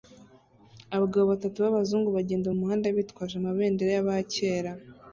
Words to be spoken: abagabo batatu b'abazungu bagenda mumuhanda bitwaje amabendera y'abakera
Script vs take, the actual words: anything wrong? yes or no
no